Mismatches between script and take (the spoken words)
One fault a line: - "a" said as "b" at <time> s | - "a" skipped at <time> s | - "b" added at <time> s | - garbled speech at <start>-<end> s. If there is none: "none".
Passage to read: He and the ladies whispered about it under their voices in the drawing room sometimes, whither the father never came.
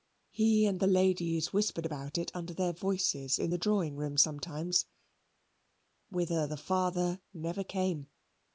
none